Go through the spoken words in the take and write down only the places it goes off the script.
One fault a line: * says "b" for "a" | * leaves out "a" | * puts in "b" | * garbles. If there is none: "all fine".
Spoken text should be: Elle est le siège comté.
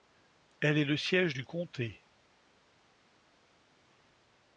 * puts in "du"